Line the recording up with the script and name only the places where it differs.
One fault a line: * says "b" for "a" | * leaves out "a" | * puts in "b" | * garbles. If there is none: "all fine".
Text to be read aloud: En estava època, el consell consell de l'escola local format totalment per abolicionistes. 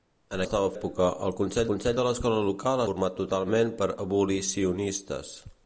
all fine